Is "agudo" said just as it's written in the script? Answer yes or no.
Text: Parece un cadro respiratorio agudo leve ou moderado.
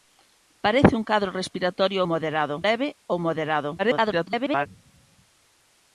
no